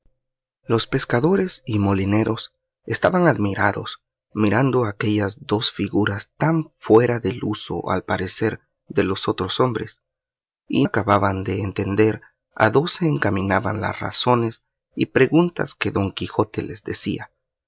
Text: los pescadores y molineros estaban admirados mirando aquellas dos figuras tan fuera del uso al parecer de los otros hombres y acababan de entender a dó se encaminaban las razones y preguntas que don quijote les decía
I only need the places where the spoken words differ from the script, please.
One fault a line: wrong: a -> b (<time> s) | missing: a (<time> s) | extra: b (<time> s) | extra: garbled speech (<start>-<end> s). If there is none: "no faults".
no faults